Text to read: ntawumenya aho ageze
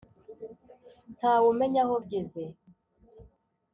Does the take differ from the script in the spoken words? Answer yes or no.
no